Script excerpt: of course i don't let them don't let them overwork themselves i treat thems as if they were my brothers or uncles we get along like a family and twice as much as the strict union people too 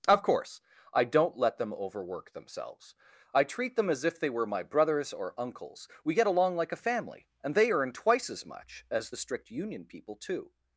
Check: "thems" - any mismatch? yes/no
yes